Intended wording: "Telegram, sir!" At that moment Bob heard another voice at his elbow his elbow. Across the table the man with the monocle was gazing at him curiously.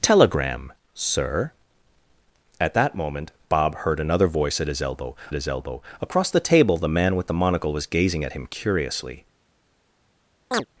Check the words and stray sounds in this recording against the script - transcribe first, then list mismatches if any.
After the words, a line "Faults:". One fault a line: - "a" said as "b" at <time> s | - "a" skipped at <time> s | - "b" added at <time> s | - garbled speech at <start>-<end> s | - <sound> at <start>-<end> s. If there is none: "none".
"Telegram, sir!" At that moment Bob heard another voice at his elbow his elbow. Across the table the man with the monocle was gazing at him curiously.
Faults:
- chirp at 10.5-10.7 s